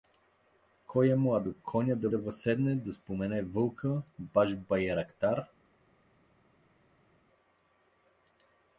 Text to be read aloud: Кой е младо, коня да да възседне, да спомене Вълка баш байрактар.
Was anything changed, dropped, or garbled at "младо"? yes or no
no